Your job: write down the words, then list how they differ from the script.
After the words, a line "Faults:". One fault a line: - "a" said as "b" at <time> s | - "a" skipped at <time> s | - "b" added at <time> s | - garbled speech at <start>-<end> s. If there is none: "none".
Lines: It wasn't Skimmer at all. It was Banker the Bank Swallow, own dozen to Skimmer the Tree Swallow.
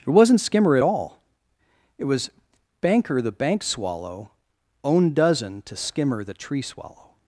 It wasn't Skimmer at all. It was Banker the Bank Swallow, own dozen to Skimmer the Tree Swallow.
Faults:
none